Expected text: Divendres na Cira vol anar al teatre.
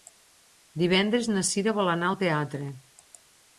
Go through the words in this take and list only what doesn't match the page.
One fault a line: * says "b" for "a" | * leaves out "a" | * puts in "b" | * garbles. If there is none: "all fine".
all fine